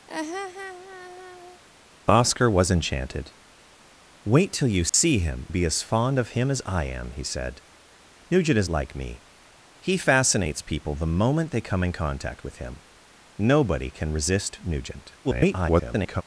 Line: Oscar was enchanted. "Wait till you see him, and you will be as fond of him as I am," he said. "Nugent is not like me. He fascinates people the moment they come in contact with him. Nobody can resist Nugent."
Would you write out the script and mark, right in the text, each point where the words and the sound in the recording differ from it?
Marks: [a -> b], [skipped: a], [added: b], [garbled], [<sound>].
[laugh] Oscar was enchanted. "Wait till you see [dropout] him, [skipped: and you will] be as fond of him as I am," he said. "Nugent is [skipped: not] like me. He fascinates people the moment they come in contact with him. Nobody can resist Nugent." [garbled]